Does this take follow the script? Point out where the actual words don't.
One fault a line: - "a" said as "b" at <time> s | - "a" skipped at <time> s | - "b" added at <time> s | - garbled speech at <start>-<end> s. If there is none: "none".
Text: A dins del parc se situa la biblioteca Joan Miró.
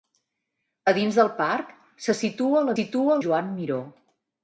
- "biblioteca" said as "situa" at 2.8 s